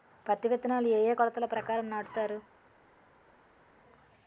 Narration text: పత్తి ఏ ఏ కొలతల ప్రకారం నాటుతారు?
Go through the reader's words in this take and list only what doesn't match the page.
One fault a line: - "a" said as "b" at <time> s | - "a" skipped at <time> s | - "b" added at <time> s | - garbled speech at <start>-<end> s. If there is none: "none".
- "విత్తనాలు" added at 0.5 s